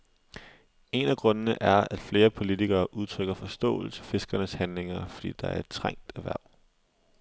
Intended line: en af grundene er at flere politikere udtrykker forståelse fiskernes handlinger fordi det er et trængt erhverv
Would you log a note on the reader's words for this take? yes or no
no